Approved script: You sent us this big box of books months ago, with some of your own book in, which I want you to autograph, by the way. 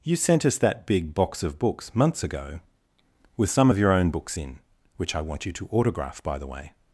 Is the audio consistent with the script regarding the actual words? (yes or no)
no